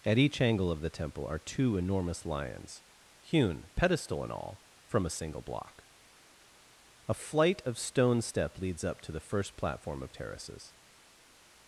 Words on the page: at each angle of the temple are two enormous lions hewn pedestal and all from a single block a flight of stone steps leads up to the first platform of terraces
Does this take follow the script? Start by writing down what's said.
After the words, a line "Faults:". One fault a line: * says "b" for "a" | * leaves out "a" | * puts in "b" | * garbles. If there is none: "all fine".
at each angle of the temple are two enormous lions hewn pedestal and all from a single block a flight of stone step leads up to the first platform of terraces
Faults:
* says "step" for "steps"